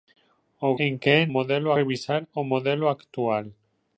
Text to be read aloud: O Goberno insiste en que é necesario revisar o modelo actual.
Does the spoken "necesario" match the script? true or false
false